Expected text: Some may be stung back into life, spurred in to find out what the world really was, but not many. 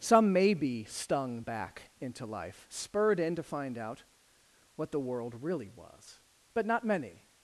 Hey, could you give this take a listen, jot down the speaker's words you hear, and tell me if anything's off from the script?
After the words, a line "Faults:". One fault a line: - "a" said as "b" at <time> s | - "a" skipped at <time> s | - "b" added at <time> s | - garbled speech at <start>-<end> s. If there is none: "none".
Some may be stung back into life, spurred in to find out what the world really was, but not many.
Faults:
none